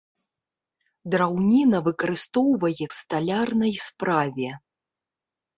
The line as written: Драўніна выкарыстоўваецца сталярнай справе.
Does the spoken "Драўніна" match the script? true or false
true